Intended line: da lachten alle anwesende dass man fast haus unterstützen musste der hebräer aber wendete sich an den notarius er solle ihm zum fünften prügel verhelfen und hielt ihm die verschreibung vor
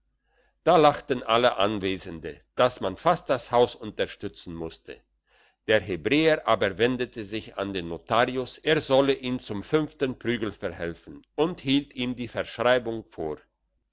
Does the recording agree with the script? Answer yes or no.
no